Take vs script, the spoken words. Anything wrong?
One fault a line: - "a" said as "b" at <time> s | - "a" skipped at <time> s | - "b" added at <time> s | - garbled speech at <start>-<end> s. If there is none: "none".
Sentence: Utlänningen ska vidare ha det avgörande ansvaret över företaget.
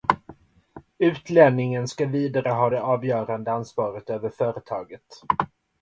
none